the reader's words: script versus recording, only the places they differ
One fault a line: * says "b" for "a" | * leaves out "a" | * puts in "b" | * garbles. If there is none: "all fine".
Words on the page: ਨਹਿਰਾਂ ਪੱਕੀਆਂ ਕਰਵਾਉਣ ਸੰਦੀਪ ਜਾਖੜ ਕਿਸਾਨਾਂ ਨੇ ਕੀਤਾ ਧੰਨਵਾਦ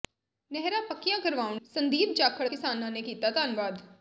all fine